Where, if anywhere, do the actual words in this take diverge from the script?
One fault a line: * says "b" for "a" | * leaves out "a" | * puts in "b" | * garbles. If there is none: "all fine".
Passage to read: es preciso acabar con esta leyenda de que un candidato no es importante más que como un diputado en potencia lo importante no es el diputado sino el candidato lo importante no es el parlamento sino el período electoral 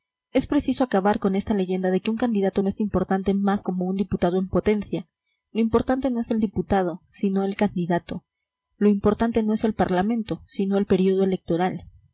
* leaves out "que"